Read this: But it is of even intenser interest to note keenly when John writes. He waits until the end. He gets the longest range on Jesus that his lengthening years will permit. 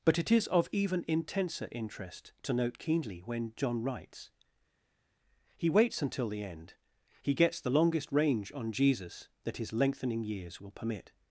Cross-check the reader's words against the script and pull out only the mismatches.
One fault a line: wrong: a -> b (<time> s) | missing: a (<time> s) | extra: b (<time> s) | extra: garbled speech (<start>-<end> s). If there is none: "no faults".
no faults